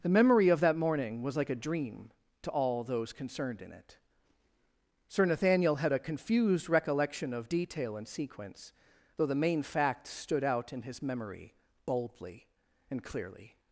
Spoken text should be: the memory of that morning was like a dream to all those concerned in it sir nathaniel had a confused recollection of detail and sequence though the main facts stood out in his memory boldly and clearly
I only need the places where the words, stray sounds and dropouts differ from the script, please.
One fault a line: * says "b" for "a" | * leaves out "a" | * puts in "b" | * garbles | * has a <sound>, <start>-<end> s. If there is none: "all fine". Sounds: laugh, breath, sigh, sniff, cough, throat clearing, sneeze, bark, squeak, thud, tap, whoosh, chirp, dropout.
all fine